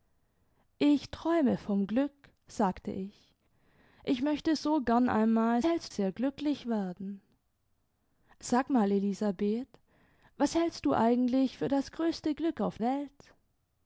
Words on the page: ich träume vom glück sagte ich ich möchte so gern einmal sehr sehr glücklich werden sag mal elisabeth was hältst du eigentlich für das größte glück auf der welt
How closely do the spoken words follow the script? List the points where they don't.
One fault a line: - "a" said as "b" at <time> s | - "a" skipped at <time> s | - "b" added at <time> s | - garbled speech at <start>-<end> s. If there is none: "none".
- "sehr" said as "hältst" at 5.6 s
- "der" skipped at 12.8 s